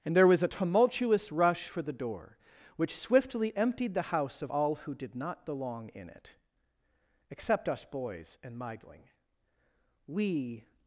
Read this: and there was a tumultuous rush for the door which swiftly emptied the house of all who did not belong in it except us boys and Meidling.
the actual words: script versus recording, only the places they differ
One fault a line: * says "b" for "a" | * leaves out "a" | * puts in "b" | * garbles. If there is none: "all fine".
* puts in "We"